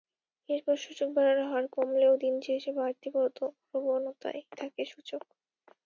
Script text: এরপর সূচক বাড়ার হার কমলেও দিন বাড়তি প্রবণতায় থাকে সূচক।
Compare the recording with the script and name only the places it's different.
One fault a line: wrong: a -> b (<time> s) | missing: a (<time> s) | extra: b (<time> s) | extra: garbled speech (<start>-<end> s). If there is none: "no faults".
extra: শেষে (2.5 s)